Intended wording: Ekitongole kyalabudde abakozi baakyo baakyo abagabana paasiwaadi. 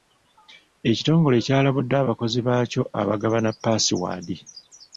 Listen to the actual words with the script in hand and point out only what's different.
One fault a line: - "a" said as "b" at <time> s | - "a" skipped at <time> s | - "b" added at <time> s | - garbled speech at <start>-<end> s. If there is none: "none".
- "baakyo" skipped at 2.8 s